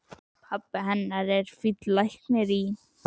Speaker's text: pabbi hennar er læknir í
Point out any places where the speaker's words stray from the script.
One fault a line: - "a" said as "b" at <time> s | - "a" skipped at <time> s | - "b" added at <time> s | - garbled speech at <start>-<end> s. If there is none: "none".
- "fínn" added at 1.6 s